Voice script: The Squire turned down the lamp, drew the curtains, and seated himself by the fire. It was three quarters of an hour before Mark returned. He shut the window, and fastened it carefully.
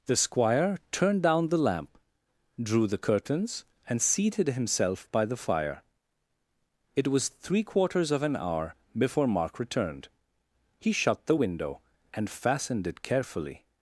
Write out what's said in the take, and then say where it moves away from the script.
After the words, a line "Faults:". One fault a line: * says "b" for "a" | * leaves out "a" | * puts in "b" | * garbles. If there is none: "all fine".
The Squire turned down the lamp, drew the curtains, and seated himself by the fire. It was three quarters of an hour before Mark returned. He shut the window, and fastened it carefully.
Faults:
all fine